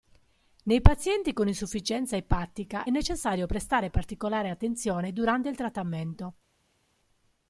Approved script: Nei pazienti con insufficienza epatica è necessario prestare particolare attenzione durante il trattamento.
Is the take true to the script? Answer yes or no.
no